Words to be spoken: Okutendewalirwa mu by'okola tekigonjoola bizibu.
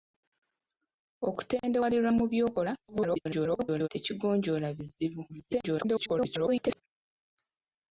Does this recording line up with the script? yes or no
no